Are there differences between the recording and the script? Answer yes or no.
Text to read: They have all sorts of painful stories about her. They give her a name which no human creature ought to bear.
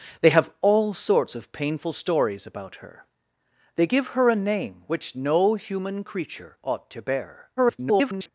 yes